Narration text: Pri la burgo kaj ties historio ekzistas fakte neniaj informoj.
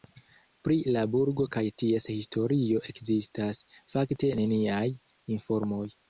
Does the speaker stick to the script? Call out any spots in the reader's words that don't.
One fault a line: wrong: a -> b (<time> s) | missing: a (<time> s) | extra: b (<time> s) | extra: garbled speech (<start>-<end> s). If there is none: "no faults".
no faults